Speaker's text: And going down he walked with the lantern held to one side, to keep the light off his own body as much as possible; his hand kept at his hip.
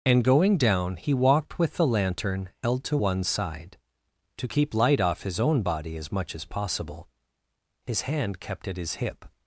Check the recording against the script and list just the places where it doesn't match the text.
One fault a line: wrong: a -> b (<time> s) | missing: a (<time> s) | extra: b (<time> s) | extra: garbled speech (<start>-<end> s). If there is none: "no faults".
missing: the (4.7 s)